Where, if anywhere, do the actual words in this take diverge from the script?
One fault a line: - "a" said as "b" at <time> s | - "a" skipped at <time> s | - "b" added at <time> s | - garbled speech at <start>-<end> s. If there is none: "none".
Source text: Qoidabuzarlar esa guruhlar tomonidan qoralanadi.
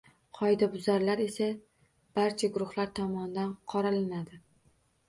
- "barcha" added at 2.2 s